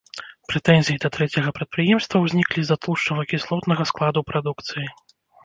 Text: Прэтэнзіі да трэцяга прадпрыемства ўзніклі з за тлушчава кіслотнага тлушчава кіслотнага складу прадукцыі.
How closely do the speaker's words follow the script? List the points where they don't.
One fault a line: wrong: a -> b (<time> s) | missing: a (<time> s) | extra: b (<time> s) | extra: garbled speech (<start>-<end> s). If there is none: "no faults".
missing: тлушчава кіслотнага (3.9 s)